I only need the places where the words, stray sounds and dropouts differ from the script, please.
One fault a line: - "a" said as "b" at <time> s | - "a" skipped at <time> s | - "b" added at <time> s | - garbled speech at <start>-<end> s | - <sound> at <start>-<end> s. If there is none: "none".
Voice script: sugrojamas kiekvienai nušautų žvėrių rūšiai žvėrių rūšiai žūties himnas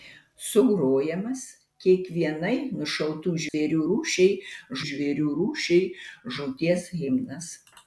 - dropout at 3.5-3.5 s